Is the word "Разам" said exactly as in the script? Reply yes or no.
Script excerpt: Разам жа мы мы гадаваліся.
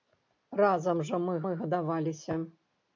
yes